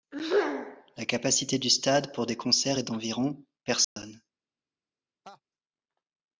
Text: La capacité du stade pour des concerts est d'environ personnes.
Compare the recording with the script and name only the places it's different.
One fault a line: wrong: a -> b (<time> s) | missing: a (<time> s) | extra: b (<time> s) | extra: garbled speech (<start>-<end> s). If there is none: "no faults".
no faults